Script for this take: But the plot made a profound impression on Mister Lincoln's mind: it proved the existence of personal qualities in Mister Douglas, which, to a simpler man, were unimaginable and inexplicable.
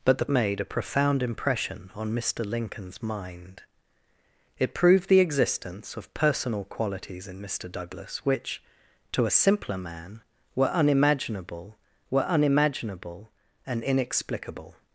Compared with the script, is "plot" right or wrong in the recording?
wrong